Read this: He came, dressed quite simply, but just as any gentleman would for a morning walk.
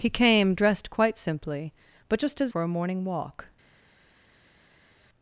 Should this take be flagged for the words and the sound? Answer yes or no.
yes